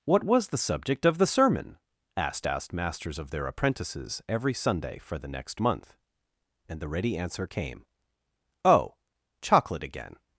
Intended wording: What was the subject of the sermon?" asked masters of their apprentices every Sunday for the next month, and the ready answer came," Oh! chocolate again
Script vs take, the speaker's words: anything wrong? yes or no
yes